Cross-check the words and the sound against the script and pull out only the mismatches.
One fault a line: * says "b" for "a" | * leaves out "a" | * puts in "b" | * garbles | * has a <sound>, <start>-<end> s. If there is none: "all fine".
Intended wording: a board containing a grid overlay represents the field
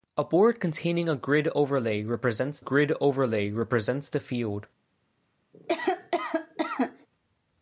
* puts in "grid overlay represents"
* has a cough, 5.5-7.1 s